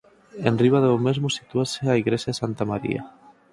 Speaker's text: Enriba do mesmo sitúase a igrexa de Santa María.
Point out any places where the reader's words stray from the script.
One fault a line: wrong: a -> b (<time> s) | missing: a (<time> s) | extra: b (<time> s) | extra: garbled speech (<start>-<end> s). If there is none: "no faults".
no faults